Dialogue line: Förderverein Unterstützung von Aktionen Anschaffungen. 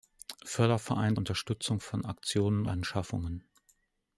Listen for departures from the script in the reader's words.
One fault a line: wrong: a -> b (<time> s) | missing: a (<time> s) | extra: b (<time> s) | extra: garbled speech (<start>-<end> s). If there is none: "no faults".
no faults